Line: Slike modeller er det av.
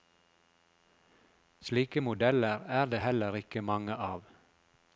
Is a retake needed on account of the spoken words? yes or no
yes